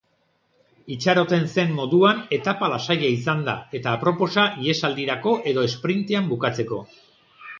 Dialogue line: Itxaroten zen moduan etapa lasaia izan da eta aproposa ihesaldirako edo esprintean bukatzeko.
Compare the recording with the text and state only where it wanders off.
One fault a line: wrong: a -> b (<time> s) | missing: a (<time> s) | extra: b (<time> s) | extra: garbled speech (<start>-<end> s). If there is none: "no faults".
no faults